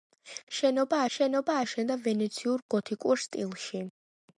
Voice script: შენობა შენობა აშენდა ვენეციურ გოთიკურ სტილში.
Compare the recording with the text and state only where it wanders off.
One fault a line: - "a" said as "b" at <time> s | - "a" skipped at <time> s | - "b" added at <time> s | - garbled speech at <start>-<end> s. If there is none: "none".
none